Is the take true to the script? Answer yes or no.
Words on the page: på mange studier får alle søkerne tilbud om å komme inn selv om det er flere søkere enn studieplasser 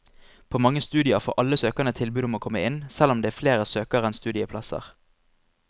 yes